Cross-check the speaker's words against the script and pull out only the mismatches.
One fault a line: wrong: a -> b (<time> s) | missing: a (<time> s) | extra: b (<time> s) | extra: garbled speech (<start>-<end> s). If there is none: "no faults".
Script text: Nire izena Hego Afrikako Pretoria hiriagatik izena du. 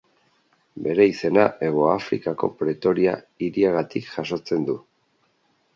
wrong: Nire -> Bere (0.9 s)
wrong: izena -> jasotzen (4.2 s)